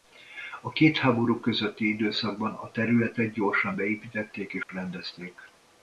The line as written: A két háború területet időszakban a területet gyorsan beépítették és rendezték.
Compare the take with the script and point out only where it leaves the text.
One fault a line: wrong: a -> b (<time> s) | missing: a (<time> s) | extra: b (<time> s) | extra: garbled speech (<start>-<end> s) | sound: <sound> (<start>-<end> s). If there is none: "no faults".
wrong: területet -> közötti (1.4 s)
sound: dropout (4.6-4.7 s)